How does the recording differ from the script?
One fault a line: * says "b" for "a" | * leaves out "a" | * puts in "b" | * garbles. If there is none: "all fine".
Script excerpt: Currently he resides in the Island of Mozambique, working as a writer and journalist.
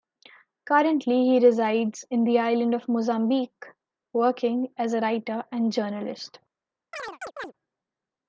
all fine